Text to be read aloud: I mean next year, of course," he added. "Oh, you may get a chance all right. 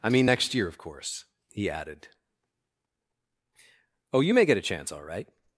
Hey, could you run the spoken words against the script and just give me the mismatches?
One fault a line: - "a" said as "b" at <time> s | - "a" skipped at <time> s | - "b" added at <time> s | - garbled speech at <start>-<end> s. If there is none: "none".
none